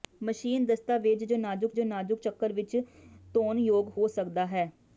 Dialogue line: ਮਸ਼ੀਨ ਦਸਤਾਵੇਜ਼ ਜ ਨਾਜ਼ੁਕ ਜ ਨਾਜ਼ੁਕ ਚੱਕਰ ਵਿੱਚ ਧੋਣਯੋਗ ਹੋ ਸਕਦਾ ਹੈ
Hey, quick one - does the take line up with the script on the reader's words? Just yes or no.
yes